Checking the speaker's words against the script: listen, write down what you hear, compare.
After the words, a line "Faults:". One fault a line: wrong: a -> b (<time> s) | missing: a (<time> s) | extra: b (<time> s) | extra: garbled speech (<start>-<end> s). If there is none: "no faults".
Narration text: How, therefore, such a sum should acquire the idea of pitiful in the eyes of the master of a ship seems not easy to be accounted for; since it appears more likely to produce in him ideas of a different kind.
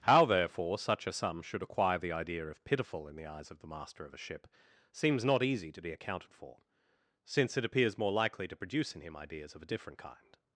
How, therefore, such a sum should acquire the idea of pitiful in the eyes of the master of a ship seems not easy to be accounted for; since it appears more likely to produce in him ideas of a different kind.
Faults:
no faults